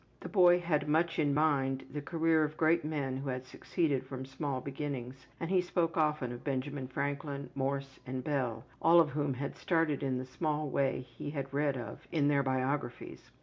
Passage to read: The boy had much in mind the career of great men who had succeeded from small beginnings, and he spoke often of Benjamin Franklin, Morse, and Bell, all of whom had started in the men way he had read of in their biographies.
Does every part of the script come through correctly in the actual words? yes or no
no